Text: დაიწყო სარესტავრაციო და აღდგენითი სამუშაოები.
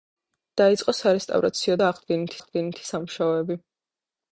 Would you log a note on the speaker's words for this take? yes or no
yes